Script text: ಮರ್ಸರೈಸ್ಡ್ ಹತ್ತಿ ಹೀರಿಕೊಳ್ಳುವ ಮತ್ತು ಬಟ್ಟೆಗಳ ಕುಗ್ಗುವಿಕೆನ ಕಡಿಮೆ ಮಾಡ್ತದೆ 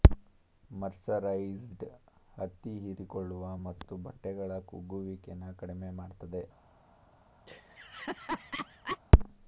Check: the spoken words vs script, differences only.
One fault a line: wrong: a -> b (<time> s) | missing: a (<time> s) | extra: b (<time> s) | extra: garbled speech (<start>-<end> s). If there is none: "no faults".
no faults